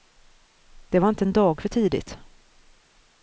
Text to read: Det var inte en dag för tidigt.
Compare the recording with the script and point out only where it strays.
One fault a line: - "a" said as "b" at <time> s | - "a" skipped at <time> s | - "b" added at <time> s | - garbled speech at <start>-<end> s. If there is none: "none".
none